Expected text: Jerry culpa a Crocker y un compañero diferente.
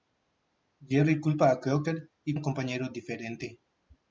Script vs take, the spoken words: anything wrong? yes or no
no